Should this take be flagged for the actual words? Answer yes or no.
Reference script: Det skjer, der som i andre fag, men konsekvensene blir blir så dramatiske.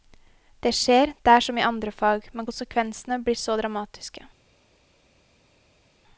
yes